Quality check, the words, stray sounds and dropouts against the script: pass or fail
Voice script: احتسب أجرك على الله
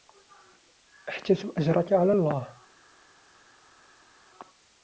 pass